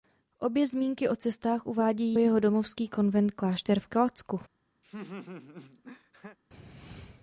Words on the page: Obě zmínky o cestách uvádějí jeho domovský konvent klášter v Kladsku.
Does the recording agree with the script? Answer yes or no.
yes